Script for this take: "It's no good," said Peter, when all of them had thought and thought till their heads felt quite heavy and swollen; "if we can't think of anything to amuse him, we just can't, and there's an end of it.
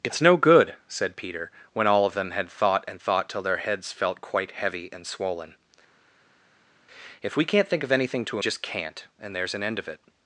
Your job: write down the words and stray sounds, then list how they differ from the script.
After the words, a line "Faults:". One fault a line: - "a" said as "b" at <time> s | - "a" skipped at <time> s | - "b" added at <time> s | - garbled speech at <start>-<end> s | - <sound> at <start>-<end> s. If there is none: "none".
"It's no good," said Peter, when all of them had thought and thought till their heads felt quite heavy and swollen; "if we can't think of anything to just can't, and there's an end of it.
Faults:
- "amuse him we" skipped at 8.4 s